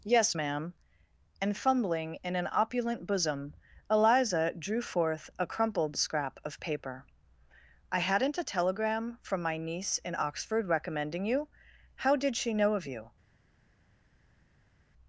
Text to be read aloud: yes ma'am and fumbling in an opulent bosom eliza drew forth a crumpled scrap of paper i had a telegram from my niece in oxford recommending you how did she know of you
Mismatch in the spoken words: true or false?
true